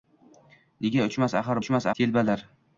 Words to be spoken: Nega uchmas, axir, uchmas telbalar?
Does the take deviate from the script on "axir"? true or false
false